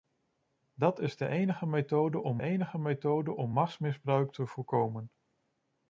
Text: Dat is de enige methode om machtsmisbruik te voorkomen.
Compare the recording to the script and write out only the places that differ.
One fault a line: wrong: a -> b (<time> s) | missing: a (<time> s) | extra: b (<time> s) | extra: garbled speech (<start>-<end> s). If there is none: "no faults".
extra: enige methode om (2.4 s)